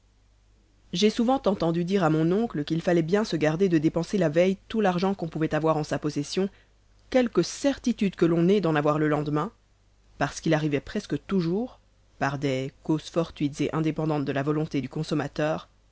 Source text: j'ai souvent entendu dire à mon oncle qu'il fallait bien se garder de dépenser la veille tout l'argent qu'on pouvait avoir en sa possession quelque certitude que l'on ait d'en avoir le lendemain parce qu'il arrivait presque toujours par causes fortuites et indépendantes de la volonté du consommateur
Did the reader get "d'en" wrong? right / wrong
right